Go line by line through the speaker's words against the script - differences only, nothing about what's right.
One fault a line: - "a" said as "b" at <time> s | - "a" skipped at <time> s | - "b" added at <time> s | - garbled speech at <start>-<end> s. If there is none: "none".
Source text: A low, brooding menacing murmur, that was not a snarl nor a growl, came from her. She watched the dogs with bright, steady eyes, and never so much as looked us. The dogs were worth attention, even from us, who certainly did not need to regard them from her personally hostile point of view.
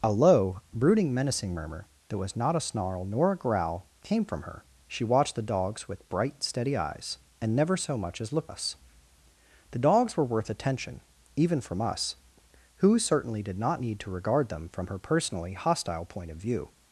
none